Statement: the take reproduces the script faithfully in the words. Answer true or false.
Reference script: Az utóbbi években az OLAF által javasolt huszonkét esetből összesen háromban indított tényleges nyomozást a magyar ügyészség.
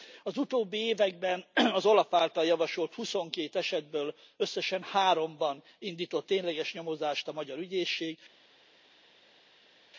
true